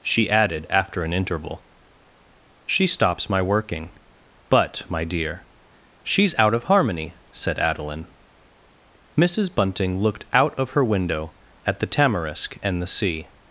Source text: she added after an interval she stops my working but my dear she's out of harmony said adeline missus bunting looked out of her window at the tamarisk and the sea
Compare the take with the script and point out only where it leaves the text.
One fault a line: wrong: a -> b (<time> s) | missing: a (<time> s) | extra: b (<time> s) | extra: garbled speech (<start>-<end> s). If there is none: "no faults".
no faults